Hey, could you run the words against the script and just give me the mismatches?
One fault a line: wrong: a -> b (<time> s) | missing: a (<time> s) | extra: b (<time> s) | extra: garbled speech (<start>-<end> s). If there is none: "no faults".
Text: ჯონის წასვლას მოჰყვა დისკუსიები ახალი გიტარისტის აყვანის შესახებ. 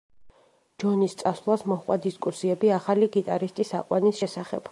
no faults